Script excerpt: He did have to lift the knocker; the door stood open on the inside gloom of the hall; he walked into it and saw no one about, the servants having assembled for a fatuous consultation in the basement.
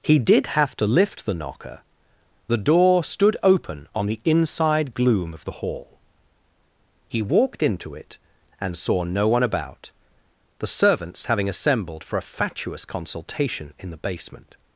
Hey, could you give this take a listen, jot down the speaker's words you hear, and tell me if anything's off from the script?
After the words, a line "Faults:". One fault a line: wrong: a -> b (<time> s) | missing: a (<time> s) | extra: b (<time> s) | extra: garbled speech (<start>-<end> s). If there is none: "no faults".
He did have to lift the knocker; the door stood open on the inside gloom of the hall; he walked into it and saw no one about, the servants having assembled for a fatuous consultation in the basement.
Faults:
no faults